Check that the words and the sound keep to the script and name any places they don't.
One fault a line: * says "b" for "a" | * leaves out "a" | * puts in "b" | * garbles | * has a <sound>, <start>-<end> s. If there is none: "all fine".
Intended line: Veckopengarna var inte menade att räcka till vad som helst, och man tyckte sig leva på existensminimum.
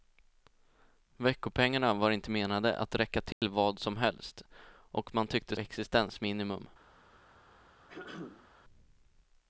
* has a dropout, 3.3-3.4 s
* leaves out "sig leva på"
* has a throat clearing, 7.9-8.5 s